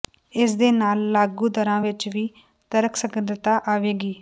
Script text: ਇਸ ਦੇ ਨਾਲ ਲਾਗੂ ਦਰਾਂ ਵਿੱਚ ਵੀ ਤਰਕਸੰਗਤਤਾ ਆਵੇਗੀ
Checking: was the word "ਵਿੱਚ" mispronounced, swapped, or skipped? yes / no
no